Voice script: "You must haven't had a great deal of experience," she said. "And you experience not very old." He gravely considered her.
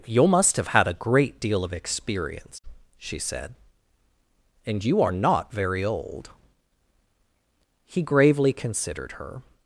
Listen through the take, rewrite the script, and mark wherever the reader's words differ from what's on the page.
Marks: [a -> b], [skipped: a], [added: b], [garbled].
"You must [haven't -> have] had a great deal of experience," she said. "And you [experience -> are] not very old." He gravely considered her.